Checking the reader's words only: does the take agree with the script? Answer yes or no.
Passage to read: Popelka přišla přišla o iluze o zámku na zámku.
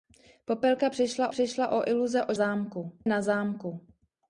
yes